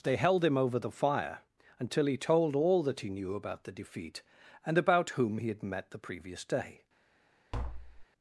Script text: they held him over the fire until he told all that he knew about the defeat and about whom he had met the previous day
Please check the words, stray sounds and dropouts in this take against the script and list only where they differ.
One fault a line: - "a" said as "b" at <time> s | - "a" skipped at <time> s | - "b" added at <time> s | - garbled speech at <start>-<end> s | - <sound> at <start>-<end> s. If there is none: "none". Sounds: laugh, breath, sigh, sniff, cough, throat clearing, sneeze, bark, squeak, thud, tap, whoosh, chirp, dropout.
- tap at 7.5-8.1 s